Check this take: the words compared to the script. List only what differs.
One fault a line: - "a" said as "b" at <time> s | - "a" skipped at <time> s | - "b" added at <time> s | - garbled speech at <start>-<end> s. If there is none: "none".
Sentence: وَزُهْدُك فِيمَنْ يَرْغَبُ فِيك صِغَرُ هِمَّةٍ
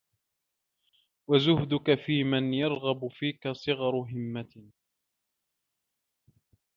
none